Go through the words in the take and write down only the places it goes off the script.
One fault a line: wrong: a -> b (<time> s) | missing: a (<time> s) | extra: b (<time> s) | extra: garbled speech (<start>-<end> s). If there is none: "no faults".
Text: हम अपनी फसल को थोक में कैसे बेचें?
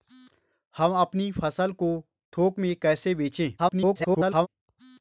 extra: garbled speech (3.6-4.5 s)